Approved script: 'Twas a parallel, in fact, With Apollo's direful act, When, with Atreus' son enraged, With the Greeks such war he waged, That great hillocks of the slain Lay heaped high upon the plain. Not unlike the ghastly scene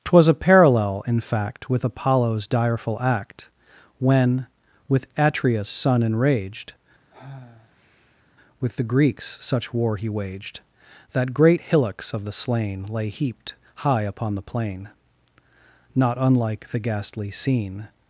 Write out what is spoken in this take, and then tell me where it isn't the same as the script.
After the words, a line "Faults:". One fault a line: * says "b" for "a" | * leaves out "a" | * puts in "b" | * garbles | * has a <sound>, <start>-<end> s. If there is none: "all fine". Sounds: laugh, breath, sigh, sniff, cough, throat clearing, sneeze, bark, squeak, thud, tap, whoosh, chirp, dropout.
'Twas a parallel, in fact, With Apollo's direful act, When, with Atreus' son enraged, With the Greeks such war he waged, That great hillocks of the slain Lay heaped high upon the plain. Not unlike the ghastly scene
Faults:
* has a sigh, 7.1-8.2 s